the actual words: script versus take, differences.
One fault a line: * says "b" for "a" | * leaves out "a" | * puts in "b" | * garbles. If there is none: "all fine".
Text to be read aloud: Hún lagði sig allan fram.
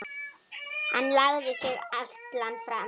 * says "Hann" for "Hún"